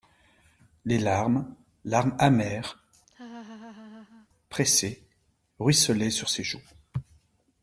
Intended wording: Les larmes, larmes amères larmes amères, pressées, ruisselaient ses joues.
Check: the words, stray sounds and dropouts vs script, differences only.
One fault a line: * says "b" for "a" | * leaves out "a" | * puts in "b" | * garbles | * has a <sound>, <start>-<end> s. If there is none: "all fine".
* leaves out "larmes amères"
* has a laugh, 3.1-4.3 s
* puts in "sur"